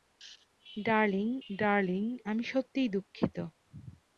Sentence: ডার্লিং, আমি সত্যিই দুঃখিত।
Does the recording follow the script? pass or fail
fail